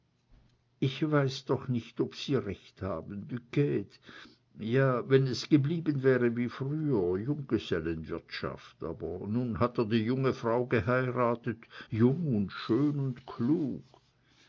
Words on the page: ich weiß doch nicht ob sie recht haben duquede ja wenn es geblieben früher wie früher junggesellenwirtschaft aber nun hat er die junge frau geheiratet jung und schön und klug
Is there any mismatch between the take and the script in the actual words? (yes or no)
yes